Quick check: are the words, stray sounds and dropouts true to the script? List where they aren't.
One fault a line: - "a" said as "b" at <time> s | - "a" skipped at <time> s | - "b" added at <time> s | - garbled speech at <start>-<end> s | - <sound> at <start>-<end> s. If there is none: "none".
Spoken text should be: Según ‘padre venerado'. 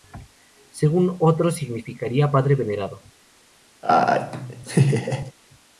- "otros significaría" added at 1.2 s
- laugh at 3.8-5.3 s